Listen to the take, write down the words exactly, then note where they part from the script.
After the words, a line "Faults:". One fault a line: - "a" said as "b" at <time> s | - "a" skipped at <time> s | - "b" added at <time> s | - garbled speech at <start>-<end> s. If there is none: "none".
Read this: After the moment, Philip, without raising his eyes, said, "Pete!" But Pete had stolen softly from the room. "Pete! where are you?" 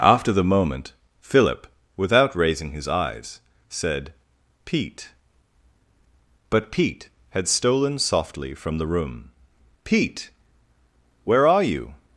After the moment, Philip, without raising his eyes, said, "Pete!" But Pete had stolen softly from the room. "Pete! where are you?"
Faults:
none